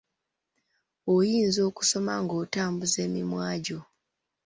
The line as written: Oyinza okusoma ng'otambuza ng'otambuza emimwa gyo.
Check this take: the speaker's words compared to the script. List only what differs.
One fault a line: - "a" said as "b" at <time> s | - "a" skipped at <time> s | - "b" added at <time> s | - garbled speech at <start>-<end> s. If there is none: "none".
- "ng'otambuza" skipped at 3.0 s